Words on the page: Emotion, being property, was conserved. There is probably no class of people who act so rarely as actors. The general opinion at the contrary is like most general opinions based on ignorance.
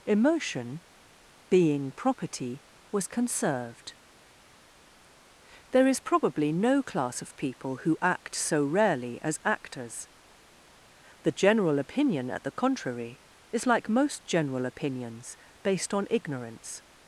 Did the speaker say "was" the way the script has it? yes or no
yes